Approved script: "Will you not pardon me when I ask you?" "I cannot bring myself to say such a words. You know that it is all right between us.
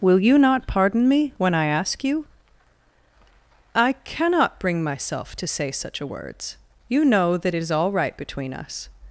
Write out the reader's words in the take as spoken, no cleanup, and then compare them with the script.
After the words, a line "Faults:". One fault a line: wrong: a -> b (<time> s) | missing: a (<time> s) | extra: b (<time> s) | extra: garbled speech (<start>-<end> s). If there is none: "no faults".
"Will you not pardon me when I ask you?" "I cannot bring myself to say such a words. You know that it is all right between us.
Faults:
no faults